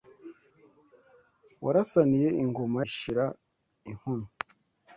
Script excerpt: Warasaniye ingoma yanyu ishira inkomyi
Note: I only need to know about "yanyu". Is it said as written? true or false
false